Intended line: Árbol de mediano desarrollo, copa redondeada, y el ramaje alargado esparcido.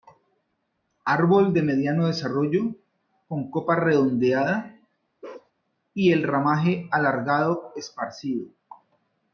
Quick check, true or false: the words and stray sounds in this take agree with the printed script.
false